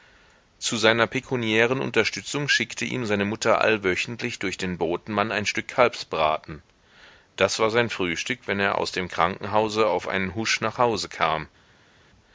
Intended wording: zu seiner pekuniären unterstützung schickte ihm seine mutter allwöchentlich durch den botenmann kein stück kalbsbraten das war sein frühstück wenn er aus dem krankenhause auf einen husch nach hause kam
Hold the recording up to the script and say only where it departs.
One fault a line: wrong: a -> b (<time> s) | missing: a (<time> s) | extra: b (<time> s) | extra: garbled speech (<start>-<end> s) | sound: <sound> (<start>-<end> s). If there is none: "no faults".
wrong: kein -> ein (5.3 s)